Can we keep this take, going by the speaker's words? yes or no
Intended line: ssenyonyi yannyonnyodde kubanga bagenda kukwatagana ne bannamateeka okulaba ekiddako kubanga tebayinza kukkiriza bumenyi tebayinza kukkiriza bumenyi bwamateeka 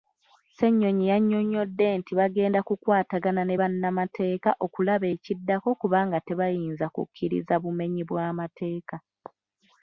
no